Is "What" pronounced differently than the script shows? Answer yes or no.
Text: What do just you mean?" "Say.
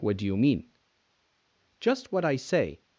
no